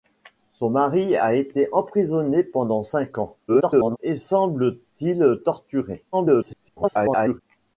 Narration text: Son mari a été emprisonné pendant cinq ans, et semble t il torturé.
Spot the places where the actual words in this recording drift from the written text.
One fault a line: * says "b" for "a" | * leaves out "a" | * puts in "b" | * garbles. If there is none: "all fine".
* garbles
* garbles